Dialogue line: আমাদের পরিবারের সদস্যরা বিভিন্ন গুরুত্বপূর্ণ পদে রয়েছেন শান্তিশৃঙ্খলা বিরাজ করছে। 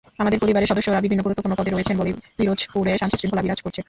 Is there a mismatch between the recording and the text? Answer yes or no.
yes